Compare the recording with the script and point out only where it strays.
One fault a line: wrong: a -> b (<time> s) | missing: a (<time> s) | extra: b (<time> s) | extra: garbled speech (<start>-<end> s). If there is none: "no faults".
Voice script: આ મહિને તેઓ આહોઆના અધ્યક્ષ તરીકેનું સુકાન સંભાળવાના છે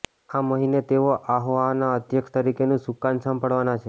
no faults